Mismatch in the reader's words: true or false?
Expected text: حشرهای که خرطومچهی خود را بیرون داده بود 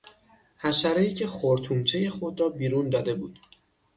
false